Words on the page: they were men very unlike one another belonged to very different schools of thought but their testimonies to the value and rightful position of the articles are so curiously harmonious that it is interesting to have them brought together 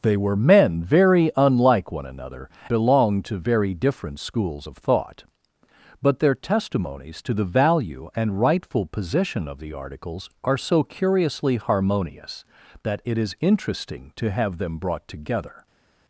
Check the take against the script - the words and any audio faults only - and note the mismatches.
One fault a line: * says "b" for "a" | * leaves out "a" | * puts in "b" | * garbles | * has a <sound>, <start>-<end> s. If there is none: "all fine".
all fine